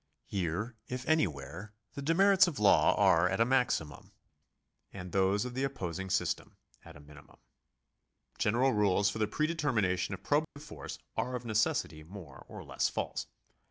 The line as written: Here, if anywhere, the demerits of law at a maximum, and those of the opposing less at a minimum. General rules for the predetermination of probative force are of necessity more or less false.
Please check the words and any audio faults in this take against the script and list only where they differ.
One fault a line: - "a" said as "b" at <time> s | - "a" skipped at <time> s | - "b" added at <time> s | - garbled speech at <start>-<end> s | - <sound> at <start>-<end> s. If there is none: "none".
- "are" added at 2.9 s
- "less" said as "system" at 6.1 s
- dropout at 10.4-10.6 s